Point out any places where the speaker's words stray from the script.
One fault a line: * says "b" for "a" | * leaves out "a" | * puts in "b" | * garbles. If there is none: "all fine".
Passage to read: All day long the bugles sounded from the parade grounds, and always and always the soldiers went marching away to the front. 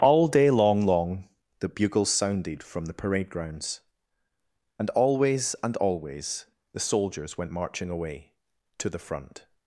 * puts in "long"